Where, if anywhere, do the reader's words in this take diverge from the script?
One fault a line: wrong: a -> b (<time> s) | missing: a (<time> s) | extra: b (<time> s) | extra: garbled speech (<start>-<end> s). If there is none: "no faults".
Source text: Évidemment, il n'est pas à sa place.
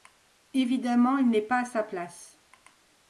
no faults